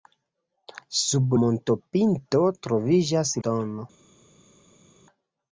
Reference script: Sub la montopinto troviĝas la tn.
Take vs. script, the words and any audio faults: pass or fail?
fail